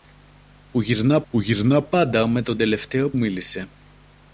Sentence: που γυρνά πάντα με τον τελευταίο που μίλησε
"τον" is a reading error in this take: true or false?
false